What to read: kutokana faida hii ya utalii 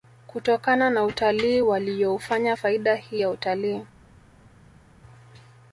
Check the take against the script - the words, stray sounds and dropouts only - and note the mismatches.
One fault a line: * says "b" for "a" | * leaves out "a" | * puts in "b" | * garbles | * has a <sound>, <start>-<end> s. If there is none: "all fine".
* puts in "na utalii waliyoufanya"